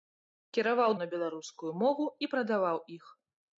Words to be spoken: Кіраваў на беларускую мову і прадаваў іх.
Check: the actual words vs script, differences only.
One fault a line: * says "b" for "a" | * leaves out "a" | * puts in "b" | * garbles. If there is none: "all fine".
all fine